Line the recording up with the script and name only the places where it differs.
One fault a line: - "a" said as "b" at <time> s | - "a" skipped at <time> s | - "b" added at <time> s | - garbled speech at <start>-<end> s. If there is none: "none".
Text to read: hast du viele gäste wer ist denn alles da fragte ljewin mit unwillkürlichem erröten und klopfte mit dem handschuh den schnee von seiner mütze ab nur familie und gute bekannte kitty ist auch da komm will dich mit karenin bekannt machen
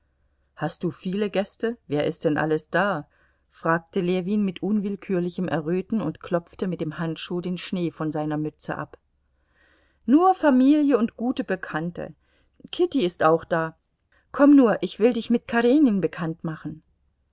- "nur ich" added at 14.6 s